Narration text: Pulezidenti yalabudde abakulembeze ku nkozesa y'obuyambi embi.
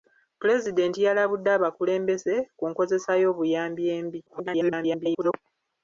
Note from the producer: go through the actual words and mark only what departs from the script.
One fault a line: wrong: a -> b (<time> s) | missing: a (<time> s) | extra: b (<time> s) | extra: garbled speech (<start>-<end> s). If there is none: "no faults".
extra: garbled speech (4.3-5.3 s)